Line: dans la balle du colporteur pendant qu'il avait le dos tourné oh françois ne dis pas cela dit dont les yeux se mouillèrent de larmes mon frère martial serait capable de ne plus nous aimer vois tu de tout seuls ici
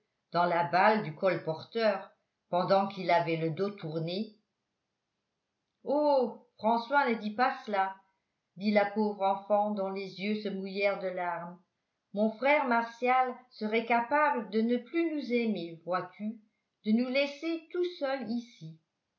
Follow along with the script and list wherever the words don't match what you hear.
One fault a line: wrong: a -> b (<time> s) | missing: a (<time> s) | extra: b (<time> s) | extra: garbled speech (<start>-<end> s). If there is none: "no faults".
extra: la pauvre enfant (8.7 s)
extra: nous laisser (16.9 s)